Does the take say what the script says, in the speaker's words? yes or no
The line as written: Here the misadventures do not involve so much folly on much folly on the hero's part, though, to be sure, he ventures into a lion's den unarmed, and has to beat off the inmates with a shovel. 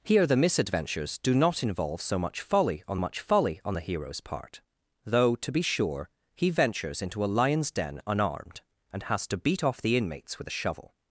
yes